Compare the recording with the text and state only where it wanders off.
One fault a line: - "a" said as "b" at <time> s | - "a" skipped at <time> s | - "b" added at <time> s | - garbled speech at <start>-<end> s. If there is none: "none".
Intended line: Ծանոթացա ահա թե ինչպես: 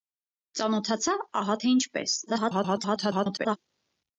- garbled speech at 2.3-3.6 s